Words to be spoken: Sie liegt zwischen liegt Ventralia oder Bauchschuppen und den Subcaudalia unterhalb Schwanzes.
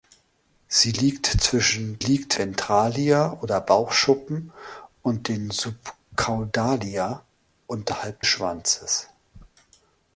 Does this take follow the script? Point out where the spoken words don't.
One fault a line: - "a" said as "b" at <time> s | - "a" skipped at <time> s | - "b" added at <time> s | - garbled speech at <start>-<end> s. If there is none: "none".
none